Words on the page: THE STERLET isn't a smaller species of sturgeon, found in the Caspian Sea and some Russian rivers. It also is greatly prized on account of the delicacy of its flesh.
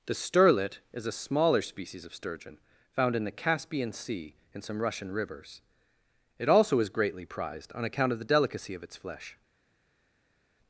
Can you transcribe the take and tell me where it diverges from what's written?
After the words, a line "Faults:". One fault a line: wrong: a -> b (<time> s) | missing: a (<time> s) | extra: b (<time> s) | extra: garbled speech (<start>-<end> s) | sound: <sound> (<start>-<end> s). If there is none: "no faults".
THE STERLET is a smaller species of sturgeon, found in the Caspian Sea and some Russian rivers. It also is greatly prized on account of the delicacy of its flesh.
Faults:
wrong: isn't -> is (0.9 s)